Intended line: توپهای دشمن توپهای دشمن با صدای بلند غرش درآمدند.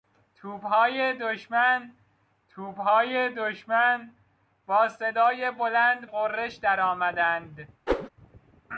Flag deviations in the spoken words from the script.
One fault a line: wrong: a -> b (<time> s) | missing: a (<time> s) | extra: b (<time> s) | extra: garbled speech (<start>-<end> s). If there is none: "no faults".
no faults